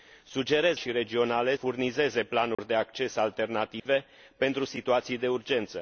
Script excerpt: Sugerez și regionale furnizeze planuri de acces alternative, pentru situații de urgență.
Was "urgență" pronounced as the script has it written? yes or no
yes